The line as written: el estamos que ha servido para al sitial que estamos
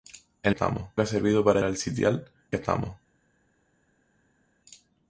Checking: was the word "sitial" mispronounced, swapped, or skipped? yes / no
no